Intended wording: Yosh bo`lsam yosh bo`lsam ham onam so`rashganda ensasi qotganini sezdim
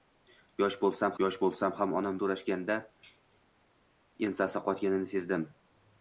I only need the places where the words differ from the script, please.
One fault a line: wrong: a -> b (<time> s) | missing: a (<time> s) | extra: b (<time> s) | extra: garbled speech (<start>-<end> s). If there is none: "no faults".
no faults